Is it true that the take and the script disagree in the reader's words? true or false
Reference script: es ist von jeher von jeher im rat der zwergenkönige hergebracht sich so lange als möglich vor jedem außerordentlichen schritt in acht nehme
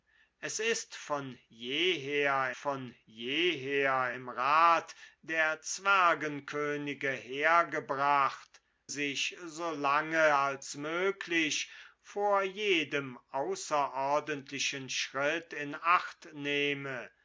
false